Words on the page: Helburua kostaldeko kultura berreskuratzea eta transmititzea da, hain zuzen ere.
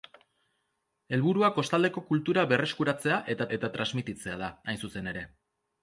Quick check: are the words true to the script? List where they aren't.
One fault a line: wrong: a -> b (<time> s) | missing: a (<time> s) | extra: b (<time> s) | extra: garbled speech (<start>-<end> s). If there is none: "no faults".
extra: eta (3.6 s)